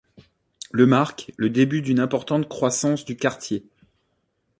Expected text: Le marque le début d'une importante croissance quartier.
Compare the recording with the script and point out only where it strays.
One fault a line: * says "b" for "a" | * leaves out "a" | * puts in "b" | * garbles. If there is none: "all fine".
* puts in "du"